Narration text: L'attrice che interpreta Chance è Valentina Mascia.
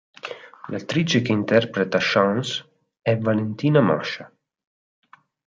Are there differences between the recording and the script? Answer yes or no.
no